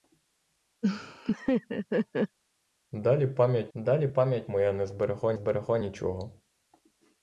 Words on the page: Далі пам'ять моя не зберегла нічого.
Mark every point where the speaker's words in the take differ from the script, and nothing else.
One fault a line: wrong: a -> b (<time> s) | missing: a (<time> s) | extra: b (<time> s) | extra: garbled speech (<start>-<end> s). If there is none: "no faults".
extra: далі пам'ять (3.7 s)
extra: зберегла (5.3 s)